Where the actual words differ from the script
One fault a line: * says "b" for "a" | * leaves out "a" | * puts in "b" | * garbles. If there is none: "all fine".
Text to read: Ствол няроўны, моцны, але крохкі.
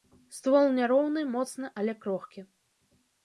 all fine